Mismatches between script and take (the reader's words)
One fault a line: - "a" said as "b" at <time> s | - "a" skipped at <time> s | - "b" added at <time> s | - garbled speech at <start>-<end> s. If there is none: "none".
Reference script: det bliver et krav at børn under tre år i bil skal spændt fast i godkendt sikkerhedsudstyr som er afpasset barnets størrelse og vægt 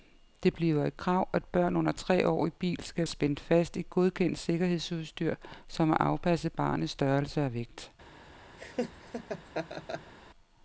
none